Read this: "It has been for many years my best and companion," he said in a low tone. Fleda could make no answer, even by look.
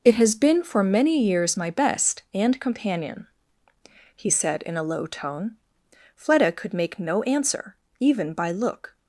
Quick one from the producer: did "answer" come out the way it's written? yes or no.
yes